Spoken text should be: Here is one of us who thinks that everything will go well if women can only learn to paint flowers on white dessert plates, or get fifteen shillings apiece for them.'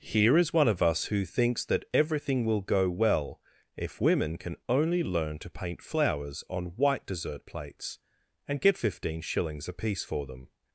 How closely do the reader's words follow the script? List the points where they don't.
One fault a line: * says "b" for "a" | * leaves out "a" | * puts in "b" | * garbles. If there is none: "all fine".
* says "and" for "or"